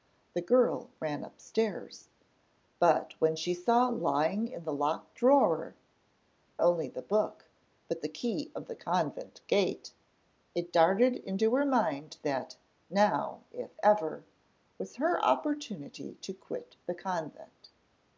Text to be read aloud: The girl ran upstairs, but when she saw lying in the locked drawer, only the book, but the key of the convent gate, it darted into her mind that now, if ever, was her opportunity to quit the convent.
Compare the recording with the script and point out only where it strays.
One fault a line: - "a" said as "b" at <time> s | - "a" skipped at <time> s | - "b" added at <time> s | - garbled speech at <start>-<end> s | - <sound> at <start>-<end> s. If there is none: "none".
none